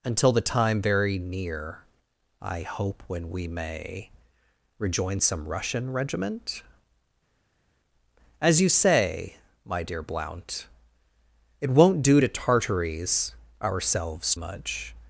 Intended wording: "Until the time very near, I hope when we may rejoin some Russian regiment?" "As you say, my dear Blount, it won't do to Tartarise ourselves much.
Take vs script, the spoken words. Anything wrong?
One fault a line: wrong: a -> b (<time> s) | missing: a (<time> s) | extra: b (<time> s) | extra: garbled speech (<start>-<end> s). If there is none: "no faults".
no faults